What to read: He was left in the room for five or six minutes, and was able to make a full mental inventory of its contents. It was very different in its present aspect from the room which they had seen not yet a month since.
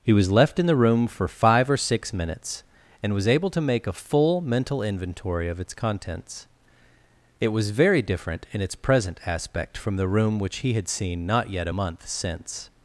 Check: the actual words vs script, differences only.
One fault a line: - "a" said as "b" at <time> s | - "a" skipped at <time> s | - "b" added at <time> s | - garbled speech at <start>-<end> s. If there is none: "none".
- "they" said as "he" at 10.6 s